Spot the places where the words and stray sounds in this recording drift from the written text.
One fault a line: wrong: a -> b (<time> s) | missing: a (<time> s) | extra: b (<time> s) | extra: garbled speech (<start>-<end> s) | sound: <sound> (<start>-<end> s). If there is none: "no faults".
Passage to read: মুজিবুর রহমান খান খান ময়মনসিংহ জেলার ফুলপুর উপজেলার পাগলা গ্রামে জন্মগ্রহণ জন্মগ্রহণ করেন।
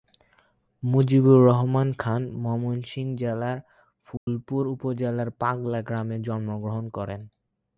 missing: খান (2.2 s)
sound: dropout (4.2-4.3 s)
missing: জন্মগ্রহণ (6.8 s)